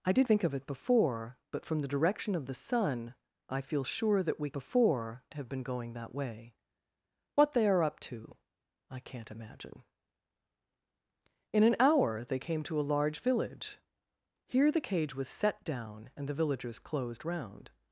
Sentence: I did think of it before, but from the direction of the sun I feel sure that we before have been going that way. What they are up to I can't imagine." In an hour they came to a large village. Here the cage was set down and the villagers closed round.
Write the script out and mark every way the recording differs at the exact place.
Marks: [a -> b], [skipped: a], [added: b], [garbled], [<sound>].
I did think of it before, but from the direction of the sun I feel sure that we before have been going that way. What they are up to I can't imagine." In an hour they came to a large village. Here the cage was set down and the villagers closed round.